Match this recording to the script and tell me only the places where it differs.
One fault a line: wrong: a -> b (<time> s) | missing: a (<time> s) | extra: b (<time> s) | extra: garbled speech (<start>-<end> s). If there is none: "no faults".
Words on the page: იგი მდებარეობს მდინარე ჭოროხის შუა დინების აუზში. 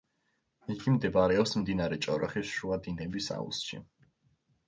no faults